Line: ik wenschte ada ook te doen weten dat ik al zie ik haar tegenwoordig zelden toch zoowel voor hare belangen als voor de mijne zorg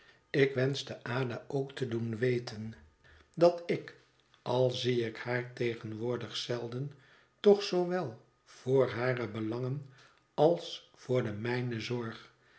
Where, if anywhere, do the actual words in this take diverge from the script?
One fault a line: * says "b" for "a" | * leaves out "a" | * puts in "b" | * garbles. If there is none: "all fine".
all fine